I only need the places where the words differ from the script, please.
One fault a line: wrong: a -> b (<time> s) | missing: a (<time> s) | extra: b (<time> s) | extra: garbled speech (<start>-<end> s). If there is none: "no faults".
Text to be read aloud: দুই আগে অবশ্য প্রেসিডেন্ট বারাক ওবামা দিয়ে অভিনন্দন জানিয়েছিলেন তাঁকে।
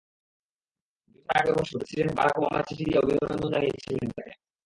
extra: বছর (1.2 s)
extra: চিঠি (2.7 s)